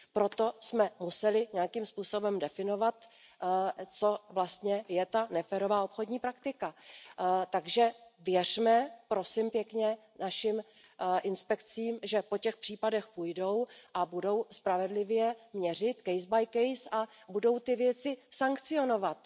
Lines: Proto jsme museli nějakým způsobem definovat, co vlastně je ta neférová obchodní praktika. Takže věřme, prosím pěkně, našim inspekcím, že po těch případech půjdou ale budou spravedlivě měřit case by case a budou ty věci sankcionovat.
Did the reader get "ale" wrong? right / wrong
wrong